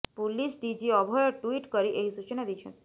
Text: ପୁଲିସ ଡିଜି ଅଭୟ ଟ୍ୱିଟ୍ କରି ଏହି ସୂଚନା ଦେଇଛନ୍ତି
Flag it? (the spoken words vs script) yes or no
no